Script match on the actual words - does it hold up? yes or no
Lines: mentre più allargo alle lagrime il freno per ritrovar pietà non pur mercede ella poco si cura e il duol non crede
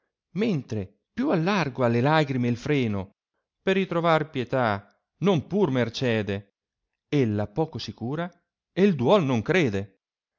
yes